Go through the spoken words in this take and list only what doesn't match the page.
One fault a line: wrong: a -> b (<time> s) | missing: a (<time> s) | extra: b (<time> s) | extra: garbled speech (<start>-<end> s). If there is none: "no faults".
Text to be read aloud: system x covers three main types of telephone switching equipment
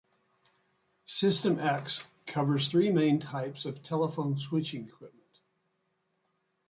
no faults